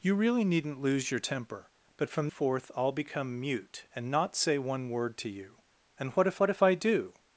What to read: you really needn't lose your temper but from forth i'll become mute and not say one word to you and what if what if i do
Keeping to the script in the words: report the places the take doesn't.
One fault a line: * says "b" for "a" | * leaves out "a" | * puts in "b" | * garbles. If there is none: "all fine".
all fine